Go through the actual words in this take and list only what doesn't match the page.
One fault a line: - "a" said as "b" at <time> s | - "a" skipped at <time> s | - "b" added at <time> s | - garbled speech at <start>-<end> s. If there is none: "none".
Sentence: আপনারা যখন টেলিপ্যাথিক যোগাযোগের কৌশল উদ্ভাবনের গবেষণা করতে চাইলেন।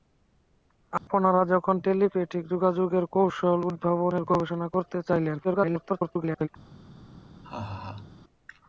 - garbled speech at 5.4-6.5 s